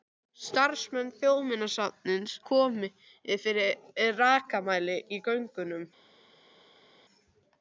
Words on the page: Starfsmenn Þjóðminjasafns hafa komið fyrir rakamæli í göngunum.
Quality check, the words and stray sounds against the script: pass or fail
fail